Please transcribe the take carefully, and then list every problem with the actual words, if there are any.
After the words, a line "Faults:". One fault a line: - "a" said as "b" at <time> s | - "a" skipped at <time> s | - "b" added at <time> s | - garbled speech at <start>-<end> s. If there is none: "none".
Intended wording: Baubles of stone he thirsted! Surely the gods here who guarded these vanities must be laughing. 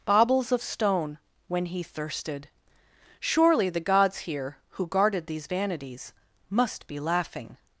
Baubles of stone when he thirsted! Surely the gods here who guarded these vanities must be laughing.
Faults:
- "when" added at 1.5 s